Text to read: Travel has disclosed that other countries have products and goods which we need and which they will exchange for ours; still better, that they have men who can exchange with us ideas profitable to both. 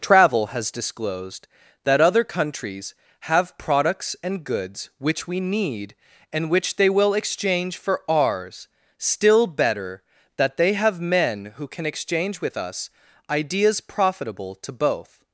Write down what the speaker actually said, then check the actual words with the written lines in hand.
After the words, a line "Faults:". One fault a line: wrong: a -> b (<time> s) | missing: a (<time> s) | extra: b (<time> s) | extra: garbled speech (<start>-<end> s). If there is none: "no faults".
Travel has disclosed that other countries have products and goods which we need and which they will exchange for ours; still better, that they have men who can exchange with us ideas profitable to both.
Faults:
no faults